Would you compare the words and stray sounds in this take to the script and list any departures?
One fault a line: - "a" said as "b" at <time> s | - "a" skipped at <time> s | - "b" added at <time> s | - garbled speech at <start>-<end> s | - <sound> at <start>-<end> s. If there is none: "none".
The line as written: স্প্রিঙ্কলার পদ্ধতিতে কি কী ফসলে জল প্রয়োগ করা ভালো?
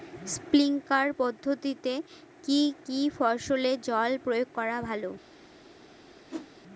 - whoosh at 6.3-6.5 s